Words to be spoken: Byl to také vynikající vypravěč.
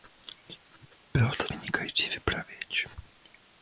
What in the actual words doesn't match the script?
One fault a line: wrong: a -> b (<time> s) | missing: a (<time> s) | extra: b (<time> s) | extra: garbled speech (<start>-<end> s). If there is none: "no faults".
missing: také (1.4 s)